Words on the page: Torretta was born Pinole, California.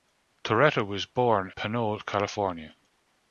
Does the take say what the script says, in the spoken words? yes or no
yes